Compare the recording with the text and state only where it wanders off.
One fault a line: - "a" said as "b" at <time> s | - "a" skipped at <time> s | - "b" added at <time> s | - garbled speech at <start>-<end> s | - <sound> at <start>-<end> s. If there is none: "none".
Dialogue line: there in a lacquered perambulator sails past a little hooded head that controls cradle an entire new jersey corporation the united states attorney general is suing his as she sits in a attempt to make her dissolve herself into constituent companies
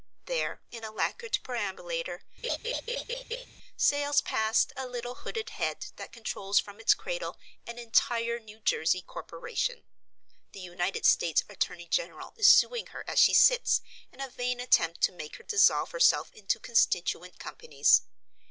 - laugh at 2.4-3.5 s
- "from its" added at 6.6 s
- "his" said as "her" at 12.9 s
- "vain" added at 14.3 s